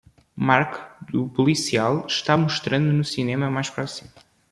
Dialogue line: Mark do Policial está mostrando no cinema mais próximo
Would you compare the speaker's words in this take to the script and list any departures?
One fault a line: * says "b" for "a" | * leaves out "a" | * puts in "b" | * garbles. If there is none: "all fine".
all fine